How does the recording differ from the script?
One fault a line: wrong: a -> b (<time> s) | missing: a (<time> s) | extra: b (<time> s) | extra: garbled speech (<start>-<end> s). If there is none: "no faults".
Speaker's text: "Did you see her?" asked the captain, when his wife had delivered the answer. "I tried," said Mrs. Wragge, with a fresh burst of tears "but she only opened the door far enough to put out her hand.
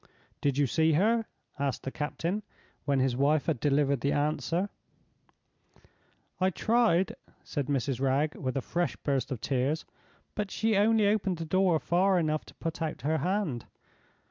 no faults